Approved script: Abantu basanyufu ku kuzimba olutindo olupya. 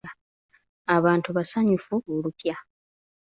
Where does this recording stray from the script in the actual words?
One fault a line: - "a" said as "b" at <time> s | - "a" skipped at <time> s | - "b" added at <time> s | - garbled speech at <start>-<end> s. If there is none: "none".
- "ku kuzimba olutindo" skipped at 1.9 s